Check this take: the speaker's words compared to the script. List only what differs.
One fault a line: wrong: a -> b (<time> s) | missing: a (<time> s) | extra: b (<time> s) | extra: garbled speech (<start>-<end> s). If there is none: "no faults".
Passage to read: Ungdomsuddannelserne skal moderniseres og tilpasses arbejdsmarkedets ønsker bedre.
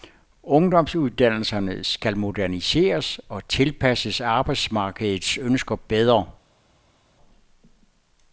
no faults